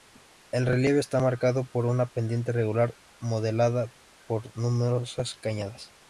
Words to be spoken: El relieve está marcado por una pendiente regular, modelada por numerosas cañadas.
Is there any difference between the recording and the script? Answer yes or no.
no